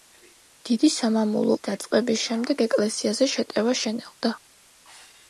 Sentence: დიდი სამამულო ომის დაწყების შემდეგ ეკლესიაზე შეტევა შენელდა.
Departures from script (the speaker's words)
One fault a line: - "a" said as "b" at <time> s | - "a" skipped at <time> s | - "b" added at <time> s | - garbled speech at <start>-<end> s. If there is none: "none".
- "ომის" skipped at 1.6 s